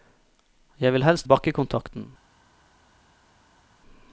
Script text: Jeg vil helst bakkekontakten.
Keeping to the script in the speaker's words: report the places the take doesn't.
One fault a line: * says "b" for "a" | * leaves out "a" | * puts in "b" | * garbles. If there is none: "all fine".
all fine